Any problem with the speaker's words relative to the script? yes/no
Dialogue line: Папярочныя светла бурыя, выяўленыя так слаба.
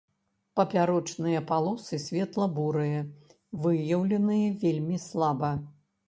yes